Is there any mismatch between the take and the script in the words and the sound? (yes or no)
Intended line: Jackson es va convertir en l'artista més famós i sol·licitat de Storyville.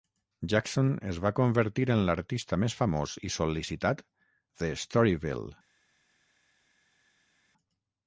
no